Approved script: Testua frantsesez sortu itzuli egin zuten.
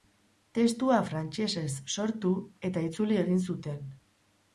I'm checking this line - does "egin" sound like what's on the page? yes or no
yes